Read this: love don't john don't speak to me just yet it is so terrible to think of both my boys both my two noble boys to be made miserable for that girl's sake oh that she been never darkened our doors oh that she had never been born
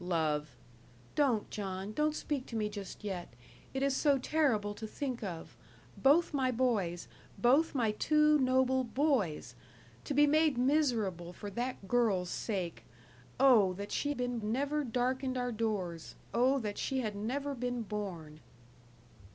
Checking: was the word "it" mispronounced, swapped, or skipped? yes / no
no